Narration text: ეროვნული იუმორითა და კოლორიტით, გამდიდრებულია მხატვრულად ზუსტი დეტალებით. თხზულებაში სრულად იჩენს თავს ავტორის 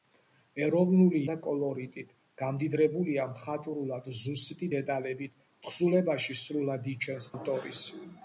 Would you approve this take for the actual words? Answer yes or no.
no